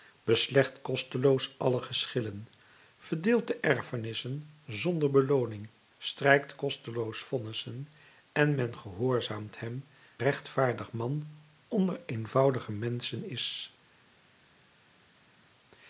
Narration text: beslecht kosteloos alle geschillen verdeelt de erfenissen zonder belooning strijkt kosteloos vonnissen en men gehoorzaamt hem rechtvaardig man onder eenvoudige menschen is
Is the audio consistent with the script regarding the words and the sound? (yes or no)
yes